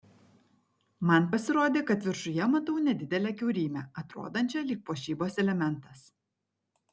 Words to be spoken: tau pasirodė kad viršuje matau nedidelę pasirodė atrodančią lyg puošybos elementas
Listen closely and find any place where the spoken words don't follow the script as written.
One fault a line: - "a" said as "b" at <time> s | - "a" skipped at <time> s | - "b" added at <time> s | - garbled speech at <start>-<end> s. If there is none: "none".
- "tau" said as "man" at 1.1 s
- "pasirodė" said as "kiaurymę" at 3.4 s